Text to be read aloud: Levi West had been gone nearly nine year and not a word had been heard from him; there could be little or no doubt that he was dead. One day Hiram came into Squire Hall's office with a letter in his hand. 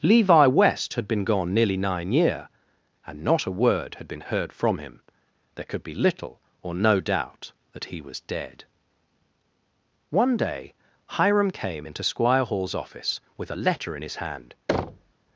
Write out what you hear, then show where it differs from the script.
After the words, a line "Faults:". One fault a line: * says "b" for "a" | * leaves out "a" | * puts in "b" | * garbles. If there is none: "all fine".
Levi West had been gone nearly nine year and not a word had been heard from him; there could be little or no doubt that he was dead. One day Hiram came into Squire Hall's office with a letter in his hand.
Faults:
all fine